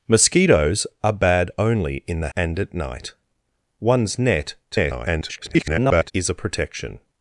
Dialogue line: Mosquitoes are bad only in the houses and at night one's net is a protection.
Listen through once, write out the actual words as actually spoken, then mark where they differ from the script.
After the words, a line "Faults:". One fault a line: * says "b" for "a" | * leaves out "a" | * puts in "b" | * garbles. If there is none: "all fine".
Mosquitoes are bad only in the and at night one's net [garbled] is a protection.
Faults:
* leaves out "houses"
* garbles